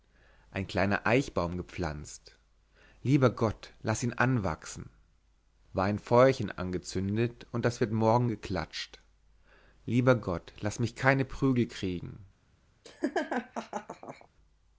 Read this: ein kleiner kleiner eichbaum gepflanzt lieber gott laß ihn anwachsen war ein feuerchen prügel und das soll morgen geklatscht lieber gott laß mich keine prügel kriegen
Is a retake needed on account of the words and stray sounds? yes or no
yes